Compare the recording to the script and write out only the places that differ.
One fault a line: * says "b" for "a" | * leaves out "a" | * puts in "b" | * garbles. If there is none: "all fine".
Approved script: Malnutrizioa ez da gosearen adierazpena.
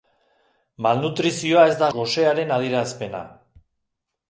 all fine